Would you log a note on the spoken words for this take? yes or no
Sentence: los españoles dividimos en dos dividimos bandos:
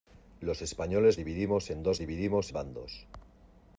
no